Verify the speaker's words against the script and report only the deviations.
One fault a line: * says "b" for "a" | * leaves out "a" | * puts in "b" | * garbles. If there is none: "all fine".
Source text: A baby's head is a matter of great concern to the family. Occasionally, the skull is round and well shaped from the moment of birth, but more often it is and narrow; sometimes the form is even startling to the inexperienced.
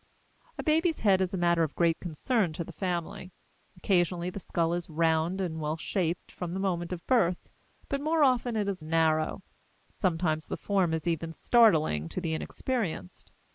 all fine